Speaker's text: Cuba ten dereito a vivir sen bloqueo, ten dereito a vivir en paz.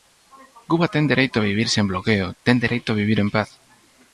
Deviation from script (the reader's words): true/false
false